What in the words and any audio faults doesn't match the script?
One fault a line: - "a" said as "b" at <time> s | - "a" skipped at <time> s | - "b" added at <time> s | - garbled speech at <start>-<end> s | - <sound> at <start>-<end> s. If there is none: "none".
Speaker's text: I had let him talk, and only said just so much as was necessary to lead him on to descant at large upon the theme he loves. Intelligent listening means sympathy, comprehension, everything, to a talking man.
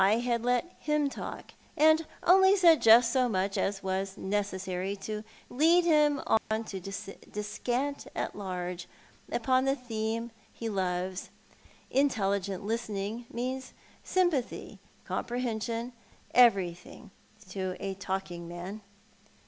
- dropout at 6.4-6.5 s